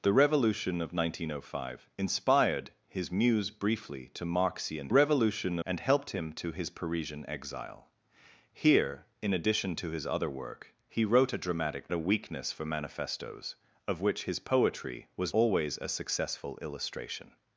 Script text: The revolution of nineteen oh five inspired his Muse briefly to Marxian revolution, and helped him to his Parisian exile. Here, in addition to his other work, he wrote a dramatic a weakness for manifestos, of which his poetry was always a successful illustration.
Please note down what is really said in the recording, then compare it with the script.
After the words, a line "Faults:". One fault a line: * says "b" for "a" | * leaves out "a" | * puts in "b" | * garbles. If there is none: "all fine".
The revolution of nineteen oh five inspired his Muse briefly to Marxian revolution, and helped him to his Parisian exile. Here, in addition to his other work, he wrote a dramatic a weakness for manifestos, of which his poetry was always a successful illustration.
Faults:
all fine